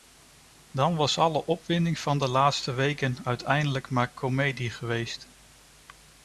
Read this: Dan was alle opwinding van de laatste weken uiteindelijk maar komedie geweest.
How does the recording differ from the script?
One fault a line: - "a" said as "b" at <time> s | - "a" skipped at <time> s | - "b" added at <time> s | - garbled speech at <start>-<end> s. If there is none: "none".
none